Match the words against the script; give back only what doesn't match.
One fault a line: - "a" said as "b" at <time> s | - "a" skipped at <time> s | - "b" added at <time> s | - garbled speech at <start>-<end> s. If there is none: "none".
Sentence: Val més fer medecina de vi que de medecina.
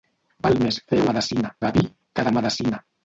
none